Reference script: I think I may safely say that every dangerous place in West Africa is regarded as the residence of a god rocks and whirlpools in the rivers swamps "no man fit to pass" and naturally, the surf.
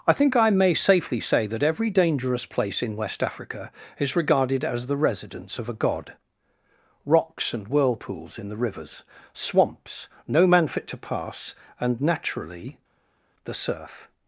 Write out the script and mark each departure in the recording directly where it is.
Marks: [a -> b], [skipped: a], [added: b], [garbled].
I think I may safely say that every dangerous place in West Africa is regarded as the residence of a god rocks and whirlpools in the rivers swamps "no man fit to pass" and naturally, the surf.